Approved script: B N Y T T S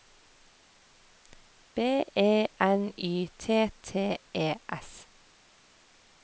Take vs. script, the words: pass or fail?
fail